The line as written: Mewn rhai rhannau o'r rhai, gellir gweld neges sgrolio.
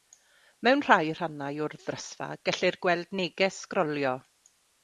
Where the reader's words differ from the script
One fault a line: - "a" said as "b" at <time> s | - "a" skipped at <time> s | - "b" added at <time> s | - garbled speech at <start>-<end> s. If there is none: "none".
- "rhai" said as "ddrysfa" at 1.9 s